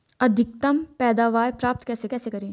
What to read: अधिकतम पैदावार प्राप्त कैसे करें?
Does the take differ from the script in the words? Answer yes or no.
yes